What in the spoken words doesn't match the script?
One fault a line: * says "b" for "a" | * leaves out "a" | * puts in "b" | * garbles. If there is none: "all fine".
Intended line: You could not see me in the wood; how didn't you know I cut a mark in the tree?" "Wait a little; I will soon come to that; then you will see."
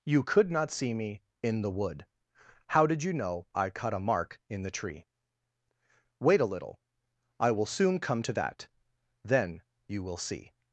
* says "did" for "didn't"